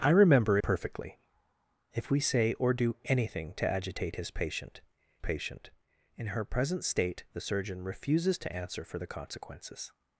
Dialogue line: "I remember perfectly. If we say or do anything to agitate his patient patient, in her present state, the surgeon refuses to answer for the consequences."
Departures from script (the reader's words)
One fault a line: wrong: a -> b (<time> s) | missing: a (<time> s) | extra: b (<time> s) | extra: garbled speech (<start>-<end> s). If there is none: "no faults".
no faults